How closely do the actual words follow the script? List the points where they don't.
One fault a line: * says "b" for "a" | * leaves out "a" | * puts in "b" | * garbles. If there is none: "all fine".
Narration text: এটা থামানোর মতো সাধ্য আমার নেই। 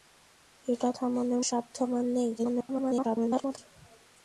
* leaves out "মতো"
* garbles